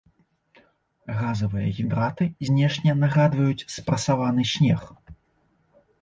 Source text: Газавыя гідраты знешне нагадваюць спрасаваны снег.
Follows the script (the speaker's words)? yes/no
yes